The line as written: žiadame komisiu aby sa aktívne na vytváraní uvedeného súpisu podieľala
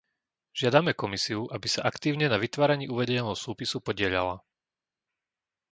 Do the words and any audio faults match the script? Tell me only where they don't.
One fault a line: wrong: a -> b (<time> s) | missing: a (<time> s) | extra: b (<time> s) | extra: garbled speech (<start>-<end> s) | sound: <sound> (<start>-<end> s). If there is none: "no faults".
no faults